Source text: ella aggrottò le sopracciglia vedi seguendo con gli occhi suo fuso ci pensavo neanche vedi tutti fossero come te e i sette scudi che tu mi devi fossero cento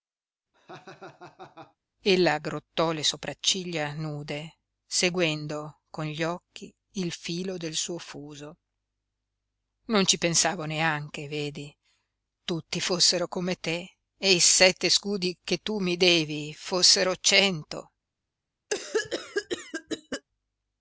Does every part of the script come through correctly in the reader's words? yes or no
no